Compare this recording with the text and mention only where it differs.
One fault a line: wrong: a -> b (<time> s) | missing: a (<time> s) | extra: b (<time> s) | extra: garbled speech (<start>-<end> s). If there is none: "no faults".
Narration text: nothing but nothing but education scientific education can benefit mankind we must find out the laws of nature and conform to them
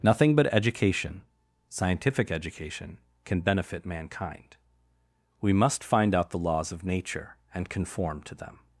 missing: nothing but (0.5 s)